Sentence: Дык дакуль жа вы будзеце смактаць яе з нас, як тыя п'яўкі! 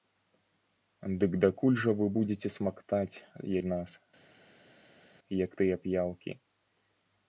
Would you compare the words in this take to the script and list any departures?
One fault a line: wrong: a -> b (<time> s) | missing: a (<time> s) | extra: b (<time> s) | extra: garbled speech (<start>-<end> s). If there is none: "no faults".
missing: яе (3.2 s)